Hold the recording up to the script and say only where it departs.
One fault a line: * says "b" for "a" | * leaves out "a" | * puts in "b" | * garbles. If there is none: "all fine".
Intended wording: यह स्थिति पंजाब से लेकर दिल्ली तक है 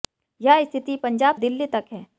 * leaves out "से लेकर"